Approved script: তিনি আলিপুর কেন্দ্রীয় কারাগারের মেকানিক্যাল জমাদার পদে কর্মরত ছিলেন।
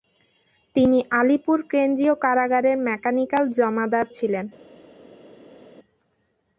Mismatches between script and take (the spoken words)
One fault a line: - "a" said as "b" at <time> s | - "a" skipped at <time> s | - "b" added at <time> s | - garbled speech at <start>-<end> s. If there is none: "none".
- "পদে কর্মরত" skipped at 4.0 s